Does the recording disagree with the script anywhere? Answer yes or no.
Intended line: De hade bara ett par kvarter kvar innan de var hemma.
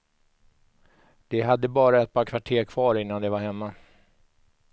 no